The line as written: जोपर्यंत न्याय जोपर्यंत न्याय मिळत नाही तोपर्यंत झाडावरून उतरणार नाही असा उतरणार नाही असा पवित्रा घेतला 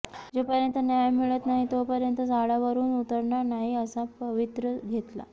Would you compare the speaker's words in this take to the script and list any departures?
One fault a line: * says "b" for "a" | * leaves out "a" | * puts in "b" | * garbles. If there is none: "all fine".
* leaves out "जोपर्यंत न्याय"
* leaves out "उतरणार नाही असा"